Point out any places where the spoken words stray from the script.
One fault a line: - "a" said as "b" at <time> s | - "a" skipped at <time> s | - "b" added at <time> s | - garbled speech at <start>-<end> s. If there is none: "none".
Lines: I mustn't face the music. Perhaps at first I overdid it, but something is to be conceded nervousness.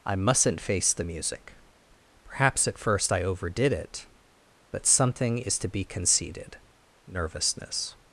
none